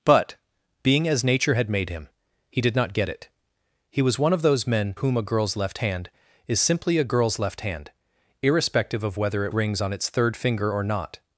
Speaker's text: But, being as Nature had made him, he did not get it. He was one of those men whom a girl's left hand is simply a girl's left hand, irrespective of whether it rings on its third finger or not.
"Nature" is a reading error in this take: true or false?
false